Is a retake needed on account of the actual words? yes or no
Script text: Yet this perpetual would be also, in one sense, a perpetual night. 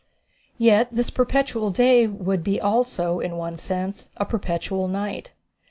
yes